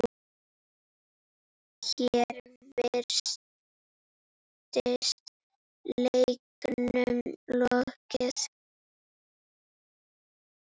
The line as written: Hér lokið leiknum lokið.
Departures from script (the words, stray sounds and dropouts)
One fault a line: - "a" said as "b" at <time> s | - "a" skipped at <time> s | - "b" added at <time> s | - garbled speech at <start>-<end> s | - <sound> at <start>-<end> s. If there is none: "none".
- "lokið" said as "virtist" at 2.8 s